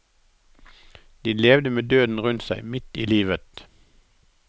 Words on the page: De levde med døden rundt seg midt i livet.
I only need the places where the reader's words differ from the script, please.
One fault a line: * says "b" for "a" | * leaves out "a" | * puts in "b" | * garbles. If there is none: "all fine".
all fine